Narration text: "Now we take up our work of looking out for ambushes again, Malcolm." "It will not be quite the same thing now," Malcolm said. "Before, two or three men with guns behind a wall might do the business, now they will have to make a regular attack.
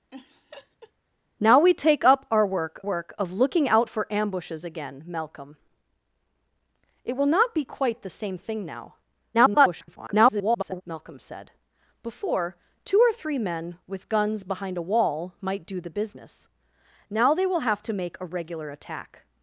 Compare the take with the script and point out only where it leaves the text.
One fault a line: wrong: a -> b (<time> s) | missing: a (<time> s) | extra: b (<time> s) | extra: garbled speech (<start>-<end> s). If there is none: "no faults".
extra: work (2.8 s)
extra: garbled speech (9.3-10.8 s)